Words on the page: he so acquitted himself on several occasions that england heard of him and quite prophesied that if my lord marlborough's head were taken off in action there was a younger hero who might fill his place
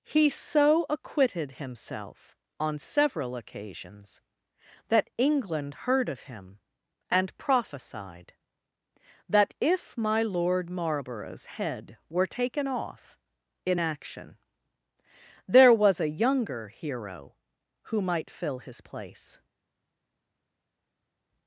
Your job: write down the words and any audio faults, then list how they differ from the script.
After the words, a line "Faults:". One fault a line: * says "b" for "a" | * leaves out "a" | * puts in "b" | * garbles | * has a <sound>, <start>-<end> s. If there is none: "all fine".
he so acquitted himself on several occasions that england heard of him and prophesied that if my lord marlborough's head were taken off in action there was a younger hero who might fill his place
Faults:
* leaves out "quite"